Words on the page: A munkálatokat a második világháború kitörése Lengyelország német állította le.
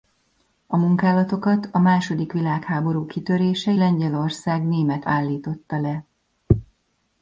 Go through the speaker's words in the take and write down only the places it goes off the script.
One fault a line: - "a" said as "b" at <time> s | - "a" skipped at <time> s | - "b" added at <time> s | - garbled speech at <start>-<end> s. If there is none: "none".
none